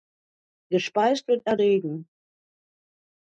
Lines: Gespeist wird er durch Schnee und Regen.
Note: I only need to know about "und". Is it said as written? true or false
false